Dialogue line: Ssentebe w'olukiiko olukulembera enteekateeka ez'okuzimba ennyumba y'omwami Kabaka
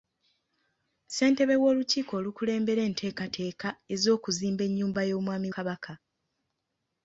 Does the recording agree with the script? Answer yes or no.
yes